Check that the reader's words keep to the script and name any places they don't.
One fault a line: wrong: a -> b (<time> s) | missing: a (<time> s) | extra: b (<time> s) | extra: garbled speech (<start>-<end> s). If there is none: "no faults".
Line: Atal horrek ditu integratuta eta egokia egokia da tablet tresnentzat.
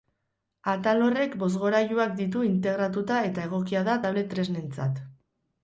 extra: bozgorailuak (1.4 s)
missing: egokia (3.9 s)